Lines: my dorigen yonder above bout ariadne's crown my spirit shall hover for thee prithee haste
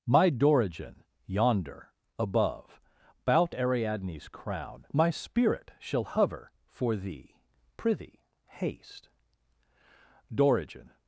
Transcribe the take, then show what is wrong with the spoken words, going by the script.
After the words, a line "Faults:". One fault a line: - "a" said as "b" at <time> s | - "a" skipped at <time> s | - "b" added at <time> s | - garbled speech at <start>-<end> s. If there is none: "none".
my dorigen yonder above bout ariadne's crown my spirit shall hover for thee prithee haste dorigen
Faults:
- "dorigen" added at 10.3 s